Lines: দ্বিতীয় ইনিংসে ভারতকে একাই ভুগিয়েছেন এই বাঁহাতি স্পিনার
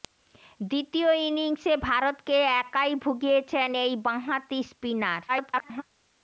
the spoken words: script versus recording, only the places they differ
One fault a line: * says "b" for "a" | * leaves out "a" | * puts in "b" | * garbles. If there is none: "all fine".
* garbles